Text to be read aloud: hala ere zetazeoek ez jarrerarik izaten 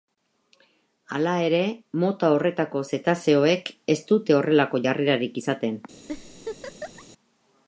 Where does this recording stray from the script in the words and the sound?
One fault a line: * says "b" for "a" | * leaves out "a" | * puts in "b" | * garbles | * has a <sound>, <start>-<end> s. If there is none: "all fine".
* puts in "mota horretako"
* puts in "dute horrelako"
* has a laugh, 6.1-7.0 s